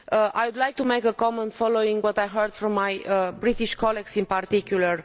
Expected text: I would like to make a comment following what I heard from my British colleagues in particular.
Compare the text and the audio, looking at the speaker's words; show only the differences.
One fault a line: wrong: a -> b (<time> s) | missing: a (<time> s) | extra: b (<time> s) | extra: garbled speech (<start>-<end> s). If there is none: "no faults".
no faults